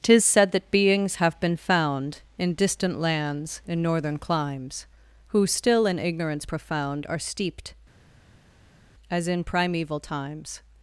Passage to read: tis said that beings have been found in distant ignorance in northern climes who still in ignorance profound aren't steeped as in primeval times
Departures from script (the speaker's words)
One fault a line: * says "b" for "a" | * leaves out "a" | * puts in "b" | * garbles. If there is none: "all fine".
* says "lands" for "ignorance"
* says "are" for "aren't"